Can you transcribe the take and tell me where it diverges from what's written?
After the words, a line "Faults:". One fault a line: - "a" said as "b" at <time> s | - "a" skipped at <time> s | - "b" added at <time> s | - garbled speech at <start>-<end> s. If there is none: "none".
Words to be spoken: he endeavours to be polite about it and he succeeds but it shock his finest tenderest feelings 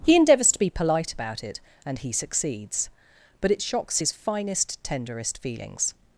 he endeavours to be polite about it and he succeeds but it shocks his finest tenderest feelings
Faults:
- "shock" said as "shocks" at 3.6 s